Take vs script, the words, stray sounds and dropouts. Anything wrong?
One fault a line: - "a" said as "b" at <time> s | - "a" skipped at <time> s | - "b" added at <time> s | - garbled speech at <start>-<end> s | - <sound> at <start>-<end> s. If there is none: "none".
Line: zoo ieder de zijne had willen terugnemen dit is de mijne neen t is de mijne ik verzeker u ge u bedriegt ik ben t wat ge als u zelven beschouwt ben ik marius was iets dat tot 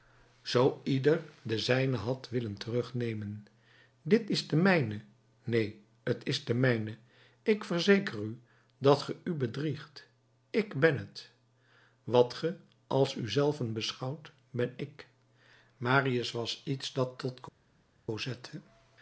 - "dat" added at 8.8 s